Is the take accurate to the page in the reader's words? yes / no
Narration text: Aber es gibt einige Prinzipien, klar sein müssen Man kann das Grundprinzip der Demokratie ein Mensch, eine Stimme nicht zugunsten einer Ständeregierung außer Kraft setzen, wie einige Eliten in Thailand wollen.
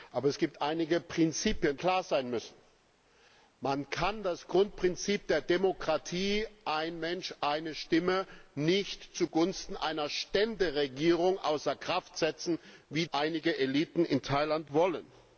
yes